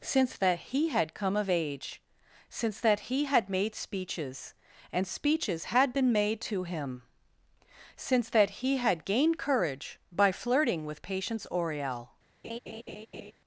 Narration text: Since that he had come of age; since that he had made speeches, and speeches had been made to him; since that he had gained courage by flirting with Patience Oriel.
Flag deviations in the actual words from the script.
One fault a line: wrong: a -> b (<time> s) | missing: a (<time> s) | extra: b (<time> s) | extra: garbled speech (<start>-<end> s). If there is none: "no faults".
no faults